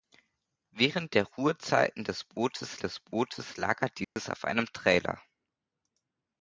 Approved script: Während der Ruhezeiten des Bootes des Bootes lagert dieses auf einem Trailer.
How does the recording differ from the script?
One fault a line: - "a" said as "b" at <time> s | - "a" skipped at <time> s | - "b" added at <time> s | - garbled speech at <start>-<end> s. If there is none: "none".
none